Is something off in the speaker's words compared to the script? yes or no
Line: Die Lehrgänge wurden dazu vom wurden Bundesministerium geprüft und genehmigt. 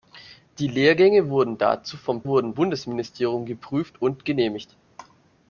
no